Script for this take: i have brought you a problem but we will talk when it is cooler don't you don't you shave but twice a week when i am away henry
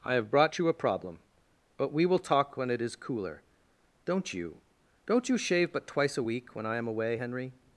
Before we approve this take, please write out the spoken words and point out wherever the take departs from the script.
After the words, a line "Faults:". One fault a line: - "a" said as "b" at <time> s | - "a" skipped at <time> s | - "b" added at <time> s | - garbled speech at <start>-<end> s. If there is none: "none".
i have brought you a problem but we will talk when it is cooler don't you don't you shave but twice a week when i am away henry
Faults:
none